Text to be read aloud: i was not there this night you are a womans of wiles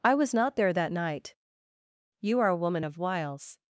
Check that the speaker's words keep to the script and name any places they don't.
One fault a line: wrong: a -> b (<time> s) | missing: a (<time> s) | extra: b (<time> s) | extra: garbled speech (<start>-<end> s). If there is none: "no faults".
wrong: this -> that (0.7 s)
wrong: womans -> woman (2.6 s)